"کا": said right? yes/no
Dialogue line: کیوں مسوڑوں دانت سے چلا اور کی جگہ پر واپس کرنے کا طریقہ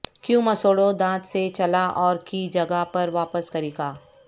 no